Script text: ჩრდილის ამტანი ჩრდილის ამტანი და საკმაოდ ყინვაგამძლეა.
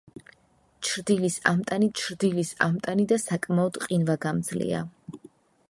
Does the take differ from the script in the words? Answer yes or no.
no